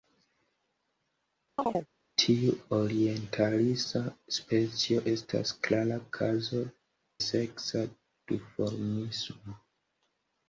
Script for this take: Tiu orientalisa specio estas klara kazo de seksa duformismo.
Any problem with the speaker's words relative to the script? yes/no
yes